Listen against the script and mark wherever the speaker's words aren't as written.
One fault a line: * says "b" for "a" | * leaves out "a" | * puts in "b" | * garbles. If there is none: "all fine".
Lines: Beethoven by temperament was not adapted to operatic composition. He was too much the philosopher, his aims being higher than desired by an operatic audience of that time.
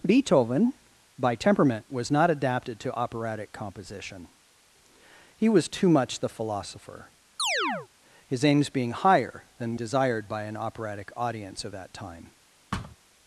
all fine